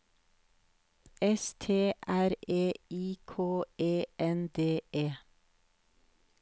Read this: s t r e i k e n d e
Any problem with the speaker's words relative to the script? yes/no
no